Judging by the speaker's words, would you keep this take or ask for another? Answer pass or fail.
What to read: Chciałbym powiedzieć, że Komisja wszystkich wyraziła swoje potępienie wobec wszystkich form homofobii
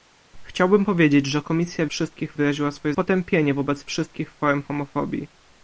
pass